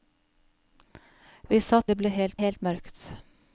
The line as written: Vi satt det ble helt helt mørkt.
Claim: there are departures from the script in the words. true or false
false